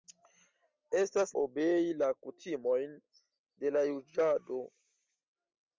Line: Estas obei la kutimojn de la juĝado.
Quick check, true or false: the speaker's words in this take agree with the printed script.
true